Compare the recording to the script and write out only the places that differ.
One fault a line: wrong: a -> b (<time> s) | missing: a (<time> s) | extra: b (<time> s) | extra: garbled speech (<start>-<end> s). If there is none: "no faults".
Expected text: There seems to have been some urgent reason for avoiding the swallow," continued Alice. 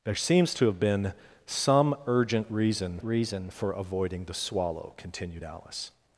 extra: reason (3.0 s)